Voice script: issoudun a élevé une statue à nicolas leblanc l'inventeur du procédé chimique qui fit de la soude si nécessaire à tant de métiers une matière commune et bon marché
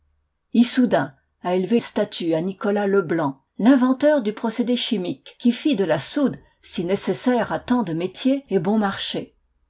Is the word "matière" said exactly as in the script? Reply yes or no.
no